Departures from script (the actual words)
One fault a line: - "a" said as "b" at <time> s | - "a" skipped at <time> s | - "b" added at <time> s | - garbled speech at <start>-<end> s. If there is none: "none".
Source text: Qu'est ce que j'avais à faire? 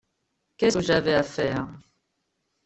- "ce" skipped at 0.7 s